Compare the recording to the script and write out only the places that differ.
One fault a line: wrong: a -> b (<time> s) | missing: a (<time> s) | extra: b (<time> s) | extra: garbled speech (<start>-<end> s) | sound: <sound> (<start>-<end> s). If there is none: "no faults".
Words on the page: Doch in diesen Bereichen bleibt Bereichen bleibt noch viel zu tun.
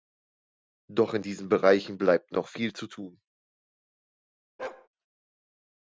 missing: Bereichen bleibt (2.3 s)
sound: bark (4.6-4.9 s)